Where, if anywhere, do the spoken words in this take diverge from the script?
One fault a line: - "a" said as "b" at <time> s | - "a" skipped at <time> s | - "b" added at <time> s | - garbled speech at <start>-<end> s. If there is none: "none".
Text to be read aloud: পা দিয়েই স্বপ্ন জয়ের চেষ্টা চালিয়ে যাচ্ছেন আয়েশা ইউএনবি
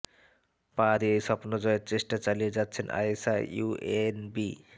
none